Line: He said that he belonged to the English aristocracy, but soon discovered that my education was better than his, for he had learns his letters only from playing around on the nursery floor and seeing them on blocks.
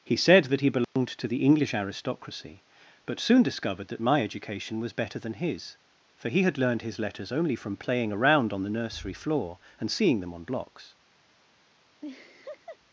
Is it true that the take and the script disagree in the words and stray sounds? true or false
true